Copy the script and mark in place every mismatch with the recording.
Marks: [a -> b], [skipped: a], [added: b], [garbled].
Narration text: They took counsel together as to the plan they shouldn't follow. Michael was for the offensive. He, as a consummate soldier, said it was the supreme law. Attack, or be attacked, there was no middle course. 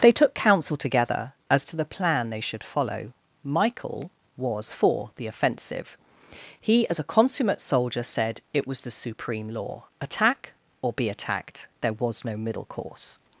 They took counsel together as to the plan they [shouldn't -> should] follow. Michael was for the offensive. He, as a consummate soldier, said it was the supreme law. Attack, or be attacked, there was no middle course.